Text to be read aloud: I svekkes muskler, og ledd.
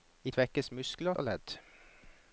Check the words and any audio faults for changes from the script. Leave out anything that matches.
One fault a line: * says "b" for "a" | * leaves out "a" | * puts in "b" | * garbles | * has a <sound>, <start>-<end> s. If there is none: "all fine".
all fine